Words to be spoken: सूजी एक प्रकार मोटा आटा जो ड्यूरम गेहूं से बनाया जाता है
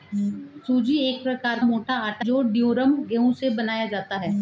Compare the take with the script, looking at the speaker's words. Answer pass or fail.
pass